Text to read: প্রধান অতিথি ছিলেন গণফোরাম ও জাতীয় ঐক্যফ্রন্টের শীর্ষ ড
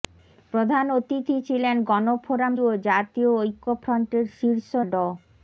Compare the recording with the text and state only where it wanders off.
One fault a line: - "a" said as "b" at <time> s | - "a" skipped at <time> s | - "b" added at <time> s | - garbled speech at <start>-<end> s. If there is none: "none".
none